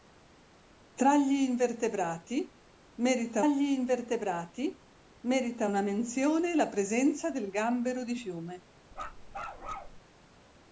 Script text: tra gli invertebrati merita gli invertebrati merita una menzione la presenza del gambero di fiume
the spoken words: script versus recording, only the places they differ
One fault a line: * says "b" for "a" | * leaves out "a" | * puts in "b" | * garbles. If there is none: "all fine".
all fine